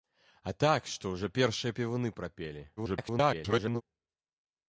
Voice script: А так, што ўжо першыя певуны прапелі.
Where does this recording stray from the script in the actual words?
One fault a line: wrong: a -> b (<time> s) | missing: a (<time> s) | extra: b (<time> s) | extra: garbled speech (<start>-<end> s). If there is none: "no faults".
extra: garbled speech (2.8-3.8 s)